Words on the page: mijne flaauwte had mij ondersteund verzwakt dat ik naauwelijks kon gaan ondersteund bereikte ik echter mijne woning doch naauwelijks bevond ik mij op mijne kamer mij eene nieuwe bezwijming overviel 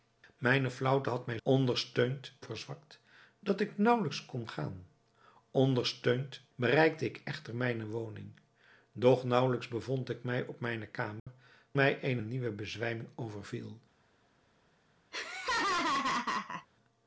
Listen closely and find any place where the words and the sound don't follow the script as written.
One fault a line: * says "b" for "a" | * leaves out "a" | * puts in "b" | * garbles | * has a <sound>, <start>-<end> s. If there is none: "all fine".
* has a dropout, 11.2-11.3 s
* has a laugh, 15.1-16.7 s